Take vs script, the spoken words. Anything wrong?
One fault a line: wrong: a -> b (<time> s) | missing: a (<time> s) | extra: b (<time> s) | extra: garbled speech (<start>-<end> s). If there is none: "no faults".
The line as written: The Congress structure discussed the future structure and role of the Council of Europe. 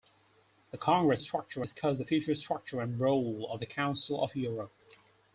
no faults